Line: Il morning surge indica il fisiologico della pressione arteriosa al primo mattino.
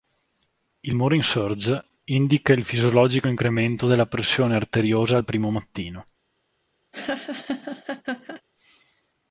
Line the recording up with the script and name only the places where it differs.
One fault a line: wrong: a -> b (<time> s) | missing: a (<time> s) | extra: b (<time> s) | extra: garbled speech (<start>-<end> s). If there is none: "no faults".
extra: incremento (3.3 s)